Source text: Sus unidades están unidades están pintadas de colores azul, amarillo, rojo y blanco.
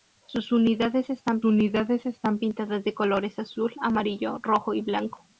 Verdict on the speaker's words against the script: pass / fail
pass